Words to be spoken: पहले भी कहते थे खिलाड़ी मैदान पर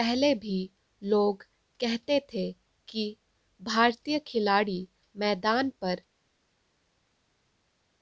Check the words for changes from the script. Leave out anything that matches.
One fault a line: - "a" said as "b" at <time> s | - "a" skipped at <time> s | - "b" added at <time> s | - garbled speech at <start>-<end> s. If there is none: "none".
- "लोग" added at 1.0 s
- "कि भारतीय" added at 2.9 s